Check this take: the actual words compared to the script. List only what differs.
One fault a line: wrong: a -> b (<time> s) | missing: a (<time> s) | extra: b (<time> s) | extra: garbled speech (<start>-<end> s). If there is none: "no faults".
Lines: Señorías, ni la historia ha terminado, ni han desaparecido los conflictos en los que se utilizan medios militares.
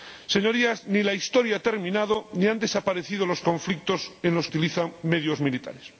missing: que se (4.5 s)